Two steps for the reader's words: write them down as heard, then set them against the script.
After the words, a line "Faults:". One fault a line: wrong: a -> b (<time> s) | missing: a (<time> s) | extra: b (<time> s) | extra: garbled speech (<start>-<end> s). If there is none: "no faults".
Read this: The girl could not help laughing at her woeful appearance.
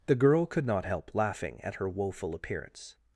The girl could not help laughing at her woeful appearance.
Faults:
no faults